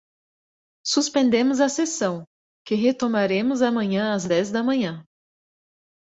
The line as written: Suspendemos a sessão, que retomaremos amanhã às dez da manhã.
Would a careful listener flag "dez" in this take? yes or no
no